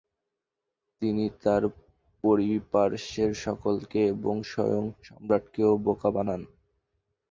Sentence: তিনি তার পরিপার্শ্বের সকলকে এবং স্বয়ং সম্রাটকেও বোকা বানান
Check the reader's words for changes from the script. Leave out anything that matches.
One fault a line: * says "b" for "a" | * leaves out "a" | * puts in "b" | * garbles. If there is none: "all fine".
all fine